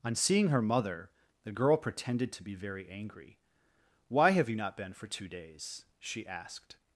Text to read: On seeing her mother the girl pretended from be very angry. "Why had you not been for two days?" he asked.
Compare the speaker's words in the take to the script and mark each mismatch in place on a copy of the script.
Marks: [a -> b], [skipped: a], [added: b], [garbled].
On seeing her mother the girl pretended [from -> to] be very angry. "Why [had -> have] you not been for two days?" [he -> she] asked.